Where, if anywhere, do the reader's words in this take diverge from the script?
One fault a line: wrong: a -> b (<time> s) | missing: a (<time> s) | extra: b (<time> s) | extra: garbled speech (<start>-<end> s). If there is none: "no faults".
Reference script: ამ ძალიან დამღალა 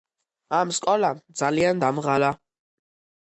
extra: სკოლამ (0.8 s)